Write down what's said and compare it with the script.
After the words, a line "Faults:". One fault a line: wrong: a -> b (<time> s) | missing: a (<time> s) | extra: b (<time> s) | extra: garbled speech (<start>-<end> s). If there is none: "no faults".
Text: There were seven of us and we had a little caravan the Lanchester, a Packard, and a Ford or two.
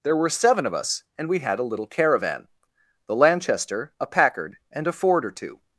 There were seven of us and we had a little caravan the Lanchester, a Packard, and a Ford or two.
Faults:
no faults